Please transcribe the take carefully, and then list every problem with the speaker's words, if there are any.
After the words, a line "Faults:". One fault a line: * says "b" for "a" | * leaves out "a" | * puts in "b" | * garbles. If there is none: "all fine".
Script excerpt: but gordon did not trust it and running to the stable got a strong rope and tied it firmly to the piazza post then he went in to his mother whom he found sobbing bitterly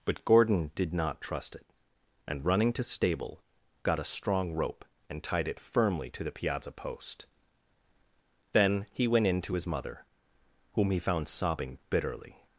but gordon did not trust it and running to stable got a strong rope and tied it firmly to the piazza post then he went in to his mother whom he found sobbing bitterly
Faults:
* leaves out "the"